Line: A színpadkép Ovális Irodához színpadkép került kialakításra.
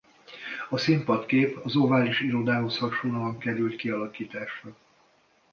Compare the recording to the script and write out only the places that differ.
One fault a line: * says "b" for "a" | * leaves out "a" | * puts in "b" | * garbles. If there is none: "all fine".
* puts in "az"
* says "hasonlóan" for "színpadkép"